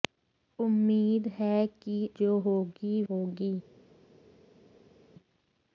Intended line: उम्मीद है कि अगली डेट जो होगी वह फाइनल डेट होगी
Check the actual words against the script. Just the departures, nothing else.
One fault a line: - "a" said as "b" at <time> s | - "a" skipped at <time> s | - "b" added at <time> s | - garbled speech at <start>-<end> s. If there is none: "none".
- "अगली डेट" skipped at 2.0 s
- "वह फाइनल डेट" skipped at 3.0 s